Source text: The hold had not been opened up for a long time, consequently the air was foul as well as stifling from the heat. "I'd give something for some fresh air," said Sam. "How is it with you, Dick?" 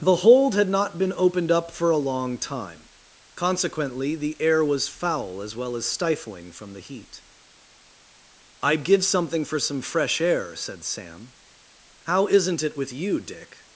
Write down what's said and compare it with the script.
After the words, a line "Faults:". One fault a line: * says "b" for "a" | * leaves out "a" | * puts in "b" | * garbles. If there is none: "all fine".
The hold had not been opened up for a long time, consequently the air was foul as well as stifling from the heat. "I'd give something for some fresh air," said Sam. "How isn't it with you, Dick?"
Faults:
* says "isn't" for "is"